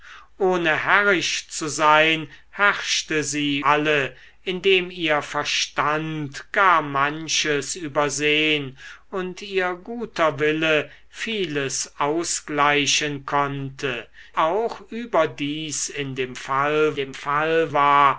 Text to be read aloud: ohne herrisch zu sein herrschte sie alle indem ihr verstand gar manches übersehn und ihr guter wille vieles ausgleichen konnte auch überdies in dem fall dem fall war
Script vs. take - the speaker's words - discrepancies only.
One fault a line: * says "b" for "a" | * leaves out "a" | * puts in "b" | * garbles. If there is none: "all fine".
all fine